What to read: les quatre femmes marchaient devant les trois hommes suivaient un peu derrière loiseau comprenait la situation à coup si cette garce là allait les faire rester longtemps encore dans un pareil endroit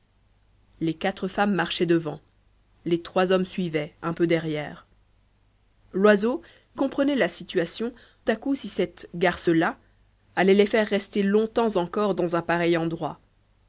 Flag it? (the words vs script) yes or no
no